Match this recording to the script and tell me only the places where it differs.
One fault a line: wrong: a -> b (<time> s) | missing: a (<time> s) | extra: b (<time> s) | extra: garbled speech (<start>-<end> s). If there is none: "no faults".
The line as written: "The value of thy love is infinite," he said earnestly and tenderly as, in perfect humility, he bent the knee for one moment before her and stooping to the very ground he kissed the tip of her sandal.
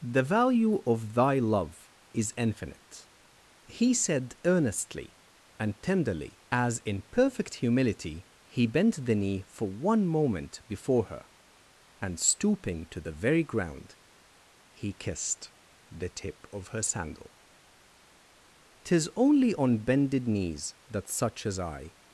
extra: Tis only on bended knees that such as I (18.9 s)